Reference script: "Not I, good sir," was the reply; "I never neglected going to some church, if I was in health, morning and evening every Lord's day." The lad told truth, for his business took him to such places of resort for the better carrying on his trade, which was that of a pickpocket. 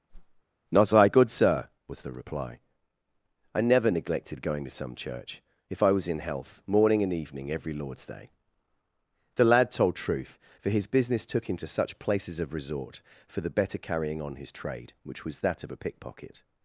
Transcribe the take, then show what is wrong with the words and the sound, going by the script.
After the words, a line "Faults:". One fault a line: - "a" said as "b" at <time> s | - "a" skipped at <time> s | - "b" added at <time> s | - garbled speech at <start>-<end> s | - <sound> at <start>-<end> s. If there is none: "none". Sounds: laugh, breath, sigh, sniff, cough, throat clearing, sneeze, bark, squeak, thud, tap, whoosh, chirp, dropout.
"Not I, good sir," was the reply; "I never neglected going to some church, if I was in health, morning and evening every Lord's day." The lad told truth, for his business took him to such places of resort for the better carrying on his trade, which was that of a pickpocket.
Faults:
- whoosh at 0.1-0.4 s